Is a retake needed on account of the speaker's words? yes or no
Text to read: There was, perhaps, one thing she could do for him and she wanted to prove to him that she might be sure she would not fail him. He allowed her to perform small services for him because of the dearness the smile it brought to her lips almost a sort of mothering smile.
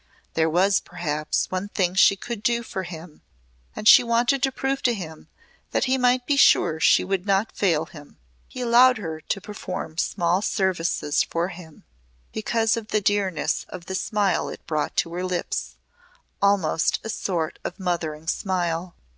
yes